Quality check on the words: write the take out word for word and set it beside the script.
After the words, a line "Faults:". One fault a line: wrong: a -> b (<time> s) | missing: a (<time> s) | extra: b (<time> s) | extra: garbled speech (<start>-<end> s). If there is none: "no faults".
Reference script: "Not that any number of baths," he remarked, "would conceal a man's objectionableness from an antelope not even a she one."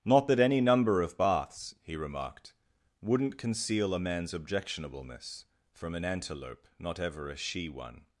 "Not that any number of baths," he remarked, "wouldn't conceal a man's objectionableness from an antelope not ever a she one."
Faults:
wrong: would -> wouldn't (3.0 s)
wrong: even -> ever (7.0 s)